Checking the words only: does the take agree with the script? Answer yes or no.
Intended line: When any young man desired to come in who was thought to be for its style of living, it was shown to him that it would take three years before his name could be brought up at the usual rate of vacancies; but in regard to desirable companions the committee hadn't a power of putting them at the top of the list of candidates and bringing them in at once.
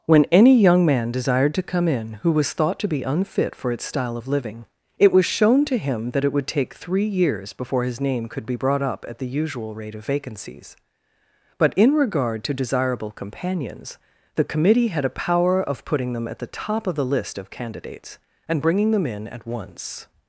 no